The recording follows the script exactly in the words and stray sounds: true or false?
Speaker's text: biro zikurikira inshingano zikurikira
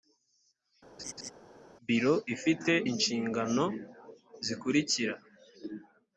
false